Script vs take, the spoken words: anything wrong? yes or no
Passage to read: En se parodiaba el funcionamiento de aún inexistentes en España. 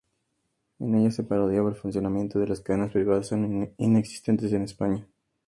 yes